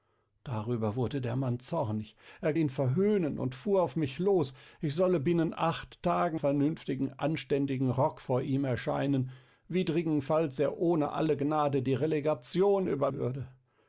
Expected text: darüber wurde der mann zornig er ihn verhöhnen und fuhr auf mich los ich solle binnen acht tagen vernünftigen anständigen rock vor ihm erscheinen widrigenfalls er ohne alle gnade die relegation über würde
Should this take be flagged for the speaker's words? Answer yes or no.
no